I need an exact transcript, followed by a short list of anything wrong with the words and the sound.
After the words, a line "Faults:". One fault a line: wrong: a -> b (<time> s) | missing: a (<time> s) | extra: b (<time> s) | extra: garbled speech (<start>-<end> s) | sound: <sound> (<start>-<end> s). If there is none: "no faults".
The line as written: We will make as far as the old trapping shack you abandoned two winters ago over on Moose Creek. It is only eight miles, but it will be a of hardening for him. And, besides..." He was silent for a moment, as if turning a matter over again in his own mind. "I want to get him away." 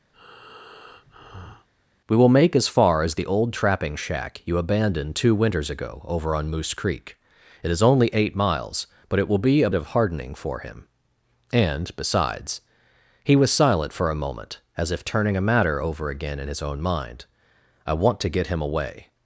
We will make as far as the old trapping shack you abandoned two winters ago over on Moose Creek. It is only eight miles, but it will be a of hardening for him. And, besides..." He was silent for a moment, as if turning a matter over again in his own mind. "I want to get him away."
Faults:
sound: breath (0.1-1.7 s)